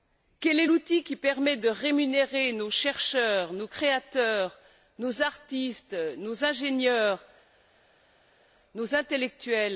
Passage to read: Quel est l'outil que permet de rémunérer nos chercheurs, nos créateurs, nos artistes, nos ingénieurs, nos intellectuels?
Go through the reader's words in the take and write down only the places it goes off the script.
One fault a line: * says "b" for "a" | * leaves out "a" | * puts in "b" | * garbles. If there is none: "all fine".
* says "qui" for "que"